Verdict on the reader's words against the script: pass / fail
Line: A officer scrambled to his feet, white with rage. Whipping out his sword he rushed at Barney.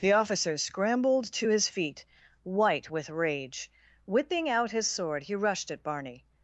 fail